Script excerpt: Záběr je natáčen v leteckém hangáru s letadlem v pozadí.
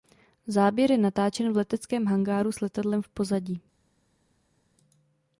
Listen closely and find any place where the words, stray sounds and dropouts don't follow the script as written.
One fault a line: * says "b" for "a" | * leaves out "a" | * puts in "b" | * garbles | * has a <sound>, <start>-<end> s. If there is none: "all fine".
all fine